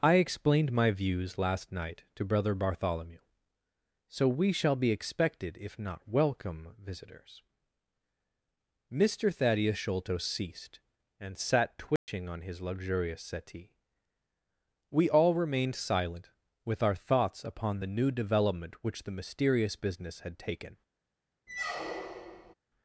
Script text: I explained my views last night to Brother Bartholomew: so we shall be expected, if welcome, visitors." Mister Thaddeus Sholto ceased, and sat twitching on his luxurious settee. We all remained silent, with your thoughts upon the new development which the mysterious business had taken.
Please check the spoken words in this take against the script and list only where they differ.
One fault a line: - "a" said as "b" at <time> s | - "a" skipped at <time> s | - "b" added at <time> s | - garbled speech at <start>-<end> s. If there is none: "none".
- "not" added at 5.8 s
- "your" said as "our" at 16.8 s